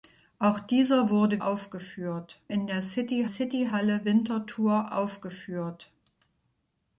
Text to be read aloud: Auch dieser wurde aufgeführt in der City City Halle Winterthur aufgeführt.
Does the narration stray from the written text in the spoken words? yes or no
no